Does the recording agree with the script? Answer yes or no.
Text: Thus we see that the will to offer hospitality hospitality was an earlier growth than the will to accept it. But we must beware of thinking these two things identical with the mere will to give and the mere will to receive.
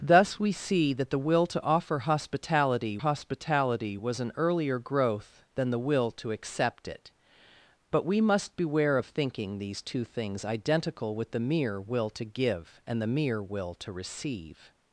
yes